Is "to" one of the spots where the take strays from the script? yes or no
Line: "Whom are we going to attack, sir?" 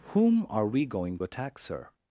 yes